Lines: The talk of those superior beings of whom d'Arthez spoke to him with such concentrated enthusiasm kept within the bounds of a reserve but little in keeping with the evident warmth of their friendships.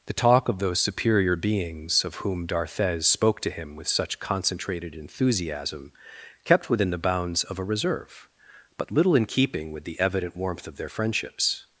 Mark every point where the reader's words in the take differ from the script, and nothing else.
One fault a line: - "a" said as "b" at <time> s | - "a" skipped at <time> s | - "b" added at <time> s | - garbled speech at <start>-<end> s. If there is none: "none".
none